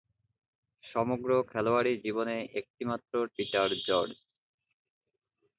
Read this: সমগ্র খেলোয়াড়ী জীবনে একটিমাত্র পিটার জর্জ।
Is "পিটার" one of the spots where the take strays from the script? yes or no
no